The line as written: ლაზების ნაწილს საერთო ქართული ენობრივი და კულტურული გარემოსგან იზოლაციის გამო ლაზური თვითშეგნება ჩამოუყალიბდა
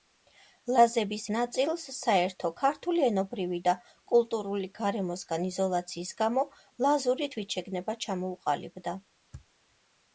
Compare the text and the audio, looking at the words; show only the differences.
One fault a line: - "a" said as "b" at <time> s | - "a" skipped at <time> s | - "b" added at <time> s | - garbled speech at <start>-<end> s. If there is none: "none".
none